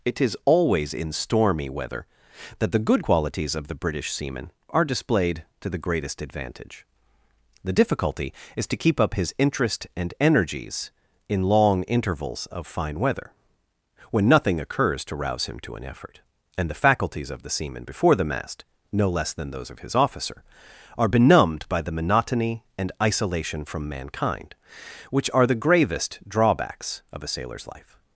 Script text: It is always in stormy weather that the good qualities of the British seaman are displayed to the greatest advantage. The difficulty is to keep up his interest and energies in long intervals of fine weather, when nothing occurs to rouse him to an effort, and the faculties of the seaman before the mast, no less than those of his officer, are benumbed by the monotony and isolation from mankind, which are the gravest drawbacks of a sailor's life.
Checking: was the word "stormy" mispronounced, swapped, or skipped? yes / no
no